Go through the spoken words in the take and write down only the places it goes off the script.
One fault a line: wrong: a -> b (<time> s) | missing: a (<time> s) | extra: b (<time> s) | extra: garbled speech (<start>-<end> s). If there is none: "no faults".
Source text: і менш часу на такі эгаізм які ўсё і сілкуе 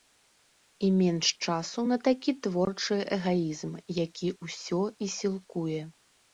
extra: творчы (2.5 s)